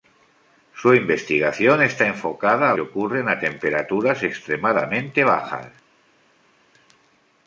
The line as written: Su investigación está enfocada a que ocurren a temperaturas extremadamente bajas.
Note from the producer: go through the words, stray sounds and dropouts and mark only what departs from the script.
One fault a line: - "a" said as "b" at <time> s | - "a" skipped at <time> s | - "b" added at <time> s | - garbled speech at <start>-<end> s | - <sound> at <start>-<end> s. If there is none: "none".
none